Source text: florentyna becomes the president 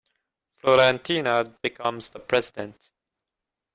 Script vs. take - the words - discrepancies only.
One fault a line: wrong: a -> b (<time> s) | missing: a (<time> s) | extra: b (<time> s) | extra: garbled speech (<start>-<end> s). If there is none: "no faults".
no faults